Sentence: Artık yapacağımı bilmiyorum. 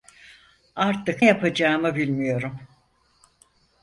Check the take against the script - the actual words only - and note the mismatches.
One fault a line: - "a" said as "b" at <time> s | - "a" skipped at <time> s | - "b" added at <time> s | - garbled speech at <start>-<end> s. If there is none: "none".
none